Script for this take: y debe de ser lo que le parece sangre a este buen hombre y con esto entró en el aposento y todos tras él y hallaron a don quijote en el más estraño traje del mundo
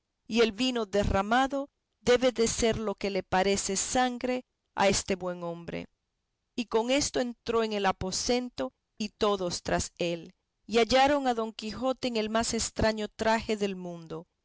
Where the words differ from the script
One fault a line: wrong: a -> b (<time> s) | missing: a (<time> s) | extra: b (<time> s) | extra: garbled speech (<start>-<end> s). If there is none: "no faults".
extra: el vino derramado (0.4 s)